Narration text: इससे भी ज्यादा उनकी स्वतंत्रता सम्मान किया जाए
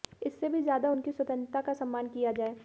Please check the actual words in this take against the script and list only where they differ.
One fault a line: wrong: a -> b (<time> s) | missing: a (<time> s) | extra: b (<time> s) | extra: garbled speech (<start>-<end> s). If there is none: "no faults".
extra: का (1.6 s)